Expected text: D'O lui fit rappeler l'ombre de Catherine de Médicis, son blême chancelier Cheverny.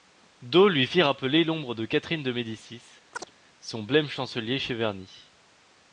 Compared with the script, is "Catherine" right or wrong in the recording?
right